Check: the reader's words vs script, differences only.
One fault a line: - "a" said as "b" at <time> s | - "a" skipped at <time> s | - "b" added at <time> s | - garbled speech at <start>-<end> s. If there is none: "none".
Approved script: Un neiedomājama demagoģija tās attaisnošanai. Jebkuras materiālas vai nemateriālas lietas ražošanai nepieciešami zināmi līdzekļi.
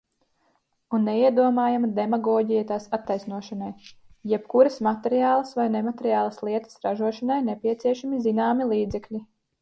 none